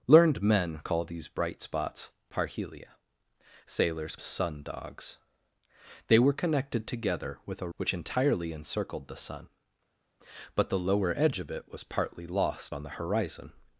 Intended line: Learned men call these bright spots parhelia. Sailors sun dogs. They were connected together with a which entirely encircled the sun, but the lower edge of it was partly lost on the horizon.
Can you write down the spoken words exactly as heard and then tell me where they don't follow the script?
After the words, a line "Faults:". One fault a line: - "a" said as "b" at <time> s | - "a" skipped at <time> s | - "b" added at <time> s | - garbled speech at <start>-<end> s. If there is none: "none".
Learned men call these bright spots parhelia. Sailors sun dogs. They were connected together with a which entirely encircled the sun, but the lower edge of it was partly lost on the horizon.
Faults:
none